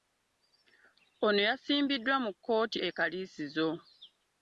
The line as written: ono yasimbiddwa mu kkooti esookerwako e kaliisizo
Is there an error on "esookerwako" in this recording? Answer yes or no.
yes